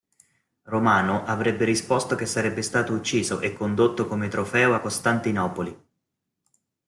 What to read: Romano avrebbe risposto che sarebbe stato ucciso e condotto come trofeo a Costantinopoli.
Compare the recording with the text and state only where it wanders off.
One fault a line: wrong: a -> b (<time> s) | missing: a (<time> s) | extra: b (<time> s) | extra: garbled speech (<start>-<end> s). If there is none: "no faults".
no faults